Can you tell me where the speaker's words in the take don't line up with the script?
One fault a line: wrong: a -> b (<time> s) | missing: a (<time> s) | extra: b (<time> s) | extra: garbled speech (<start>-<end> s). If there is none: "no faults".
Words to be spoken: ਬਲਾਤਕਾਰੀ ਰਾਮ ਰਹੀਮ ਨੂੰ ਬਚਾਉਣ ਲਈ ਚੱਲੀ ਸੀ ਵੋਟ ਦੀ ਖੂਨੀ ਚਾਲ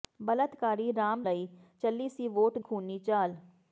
missing: ਰਹੀਮ ਨੂੰ ਬਚਾਉਣ (1.2 s)
missing: ਦੀ (2.6 s)